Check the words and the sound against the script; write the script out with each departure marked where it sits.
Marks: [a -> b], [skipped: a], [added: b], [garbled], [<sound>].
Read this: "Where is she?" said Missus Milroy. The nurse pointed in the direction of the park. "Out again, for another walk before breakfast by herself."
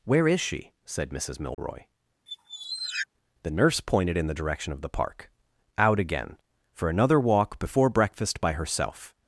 "Where is she?" said Missus Milroy. [dropout] [squeak] The nurse pointed in the direction of the park. "Out again, for another walk before breakfast by herself."